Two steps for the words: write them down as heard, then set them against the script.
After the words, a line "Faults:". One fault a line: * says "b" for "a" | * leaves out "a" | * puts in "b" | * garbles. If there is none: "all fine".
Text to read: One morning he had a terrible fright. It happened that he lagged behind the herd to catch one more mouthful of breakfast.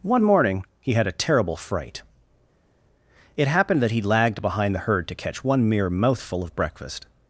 One morning he had a terrible fright. It happened that he lagged behind the herd to catch one mere mouthful of breakfast.
Faults:
* says "mere" for "more"